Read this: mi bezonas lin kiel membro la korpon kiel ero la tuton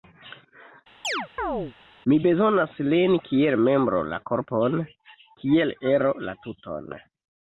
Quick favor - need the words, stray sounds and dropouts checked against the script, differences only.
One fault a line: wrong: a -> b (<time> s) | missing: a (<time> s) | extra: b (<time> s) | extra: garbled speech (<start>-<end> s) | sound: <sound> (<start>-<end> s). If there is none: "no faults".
sound: chirp (1.0-1.7 s)